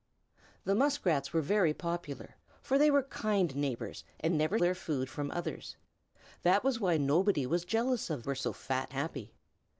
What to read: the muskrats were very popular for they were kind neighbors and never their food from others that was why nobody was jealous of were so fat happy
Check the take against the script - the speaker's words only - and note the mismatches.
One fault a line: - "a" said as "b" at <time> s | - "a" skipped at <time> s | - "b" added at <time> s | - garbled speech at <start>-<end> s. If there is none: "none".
none